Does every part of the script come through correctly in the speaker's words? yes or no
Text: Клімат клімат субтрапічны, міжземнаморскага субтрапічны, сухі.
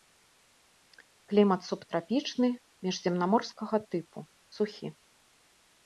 no